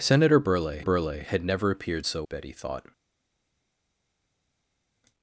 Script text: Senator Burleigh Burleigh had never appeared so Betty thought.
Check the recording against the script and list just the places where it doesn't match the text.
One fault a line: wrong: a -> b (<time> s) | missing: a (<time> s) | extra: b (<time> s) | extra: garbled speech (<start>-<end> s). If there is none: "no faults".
no faults